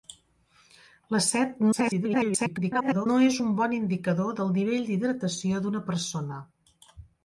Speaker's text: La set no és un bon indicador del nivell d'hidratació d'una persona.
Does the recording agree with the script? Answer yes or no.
no